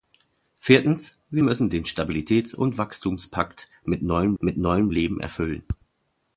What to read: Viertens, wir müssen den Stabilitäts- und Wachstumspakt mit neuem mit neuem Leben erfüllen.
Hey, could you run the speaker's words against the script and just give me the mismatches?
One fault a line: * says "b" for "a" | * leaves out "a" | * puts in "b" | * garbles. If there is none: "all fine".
all fine